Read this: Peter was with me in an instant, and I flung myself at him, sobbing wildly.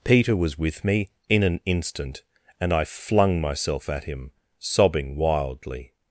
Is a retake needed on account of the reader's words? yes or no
no